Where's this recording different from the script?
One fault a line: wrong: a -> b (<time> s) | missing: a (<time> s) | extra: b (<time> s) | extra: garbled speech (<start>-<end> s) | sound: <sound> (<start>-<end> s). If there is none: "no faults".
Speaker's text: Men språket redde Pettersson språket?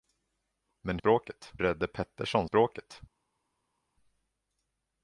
no faults